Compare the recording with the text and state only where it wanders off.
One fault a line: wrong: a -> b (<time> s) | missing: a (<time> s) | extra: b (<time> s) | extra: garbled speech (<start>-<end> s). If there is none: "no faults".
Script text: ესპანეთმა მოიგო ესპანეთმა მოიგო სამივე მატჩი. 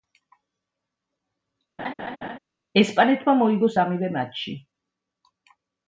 missing: ესპანეთმა მოიგო (3.7 s)